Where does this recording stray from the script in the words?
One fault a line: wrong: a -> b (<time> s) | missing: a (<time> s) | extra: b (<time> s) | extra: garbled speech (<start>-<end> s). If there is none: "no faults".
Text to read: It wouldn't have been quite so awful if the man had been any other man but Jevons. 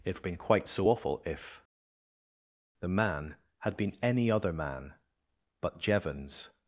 missing: wouldn't have (0.2 s)